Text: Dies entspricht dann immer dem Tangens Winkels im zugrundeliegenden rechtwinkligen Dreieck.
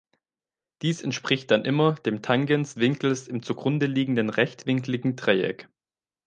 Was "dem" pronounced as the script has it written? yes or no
yes